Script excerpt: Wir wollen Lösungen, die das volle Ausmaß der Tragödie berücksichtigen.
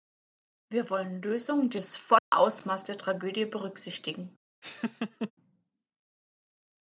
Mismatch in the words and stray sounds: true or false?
true